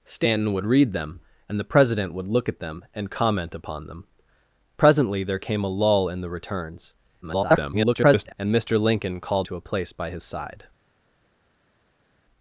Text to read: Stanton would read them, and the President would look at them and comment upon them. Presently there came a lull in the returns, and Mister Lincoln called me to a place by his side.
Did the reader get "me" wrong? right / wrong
wrong